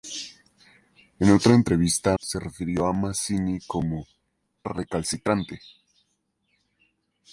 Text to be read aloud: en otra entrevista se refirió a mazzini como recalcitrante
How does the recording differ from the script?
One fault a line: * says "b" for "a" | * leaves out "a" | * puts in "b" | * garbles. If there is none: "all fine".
all fine